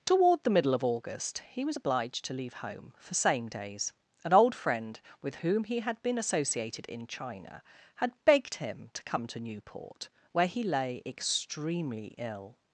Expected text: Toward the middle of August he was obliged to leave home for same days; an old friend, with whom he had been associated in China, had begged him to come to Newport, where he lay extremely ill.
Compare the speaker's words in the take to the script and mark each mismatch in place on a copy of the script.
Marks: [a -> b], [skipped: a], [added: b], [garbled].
Toward the middle of August he was obliged to leave home for same days; an old friend, with whom he had been associated in China, had begged him to come to Newport, where he lay extremely ill.